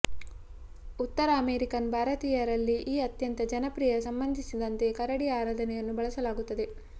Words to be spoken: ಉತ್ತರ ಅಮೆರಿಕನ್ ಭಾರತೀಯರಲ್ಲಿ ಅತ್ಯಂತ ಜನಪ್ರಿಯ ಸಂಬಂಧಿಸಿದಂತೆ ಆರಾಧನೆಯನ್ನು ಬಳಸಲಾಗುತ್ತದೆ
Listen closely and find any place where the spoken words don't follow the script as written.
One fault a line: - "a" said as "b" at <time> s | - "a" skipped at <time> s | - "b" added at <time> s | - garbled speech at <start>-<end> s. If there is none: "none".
- "ಈ" added at 2.9 s
- "ಕರಡಿ" added at 5.0 s